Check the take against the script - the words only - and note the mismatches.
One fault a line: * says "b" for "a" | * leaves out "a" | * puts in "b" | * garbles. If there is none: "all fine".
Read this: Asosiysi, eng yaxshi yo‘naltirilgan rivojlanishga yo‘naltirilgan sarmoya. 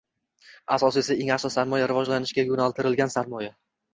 * says "sarmoya" for "yo‘naltirilgan"